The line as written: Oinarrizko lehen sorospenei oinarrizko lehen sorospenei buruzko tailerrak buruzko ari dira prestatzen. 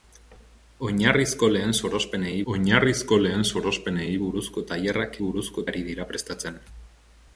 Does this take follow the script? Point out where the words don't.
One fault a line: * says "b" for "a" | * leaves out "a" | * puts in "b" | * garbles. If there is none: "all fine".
all fine